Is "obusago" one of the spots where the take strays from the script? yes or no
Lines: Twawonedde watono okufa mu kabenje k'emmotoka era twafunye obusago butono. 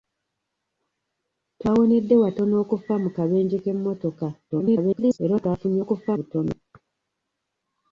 yes